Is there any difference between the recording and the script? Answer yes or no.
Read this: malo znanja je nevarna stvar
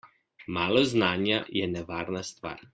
no